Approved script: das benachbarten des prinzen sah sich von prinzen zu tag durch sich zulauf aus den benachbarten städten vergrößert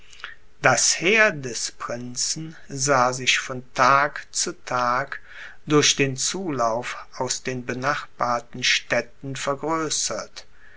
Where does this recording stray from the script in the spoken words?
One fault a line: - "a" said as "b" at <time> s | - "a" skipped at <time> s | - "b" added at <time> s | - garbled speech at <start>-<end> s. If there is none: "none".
- "benachbarten" said as "heer" at 1.0 s
- "prinzen" said as "tag" at 3.7 s
- "sich" said as "den" at 6.0 s